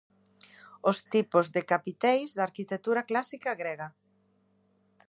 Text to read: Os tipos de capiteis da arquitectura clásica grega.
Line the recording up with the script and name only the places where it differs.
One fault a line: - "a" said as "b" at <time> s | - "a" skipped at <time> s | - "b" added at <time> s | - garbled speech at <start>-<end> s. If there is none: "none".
none